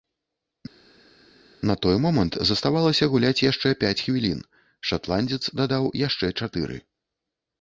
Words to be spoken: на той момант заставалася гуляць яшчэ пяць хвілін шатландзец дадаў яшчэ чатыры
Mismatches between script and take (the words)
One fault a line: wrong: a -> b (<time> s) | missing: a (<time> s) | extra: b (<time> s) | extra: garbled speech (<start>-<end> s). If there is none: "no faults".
no faults